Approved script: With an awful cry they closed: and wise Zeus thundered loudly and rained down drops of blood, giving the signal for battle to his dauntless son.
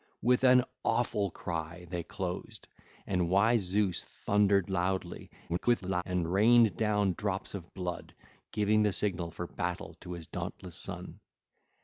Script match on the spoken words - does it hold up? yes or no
no